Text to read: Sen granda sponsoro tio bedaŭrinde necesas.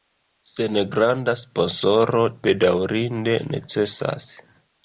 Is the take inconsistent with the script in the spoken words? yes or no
yes